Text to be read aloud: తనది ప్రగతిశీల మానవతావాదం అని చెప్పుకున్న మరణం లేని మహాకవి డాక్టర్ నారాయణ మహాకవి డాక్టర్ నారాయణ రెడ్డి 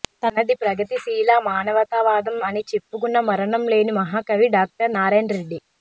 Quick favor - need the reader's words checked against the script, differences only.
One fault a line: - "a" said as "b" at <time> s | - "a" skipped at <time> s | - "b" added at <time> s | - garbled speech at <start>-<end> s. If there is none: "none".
- "మహాకవి డాక్టర్ నారాయణ" skipped at 5.3 s